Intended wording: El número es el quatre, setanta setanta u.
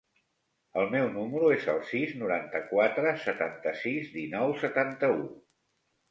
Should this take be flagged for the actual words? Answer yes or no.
yes